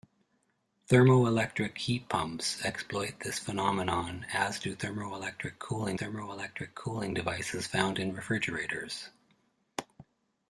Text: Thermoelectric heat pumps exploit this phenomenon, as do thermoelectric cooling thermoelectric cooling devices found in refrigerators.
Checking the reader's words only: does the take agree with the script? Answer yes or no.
yes